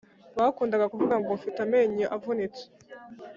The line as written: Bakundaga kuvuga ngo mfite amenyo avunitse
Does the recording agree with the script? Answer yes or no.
yes